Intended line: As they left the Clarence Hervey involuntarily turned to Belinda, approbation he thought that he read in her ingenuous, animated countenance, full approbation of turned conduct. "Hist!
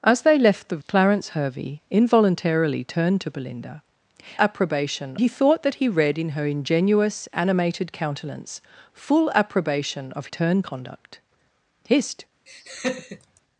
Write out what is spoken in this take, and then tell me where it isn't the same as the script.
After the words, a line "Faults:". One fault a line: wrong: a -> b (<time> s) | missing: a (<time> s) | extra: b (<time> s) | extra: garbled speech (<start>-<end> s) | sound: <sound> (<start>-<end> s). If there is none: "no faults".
As they left the Clarence Hervey involuntarily turned to Belinda, approbation he thought that he read in her ingenuous, animated countenance, full approbation of turned conduct. "Hist!
Faults:
sound: laugh (12.5-13.4 s)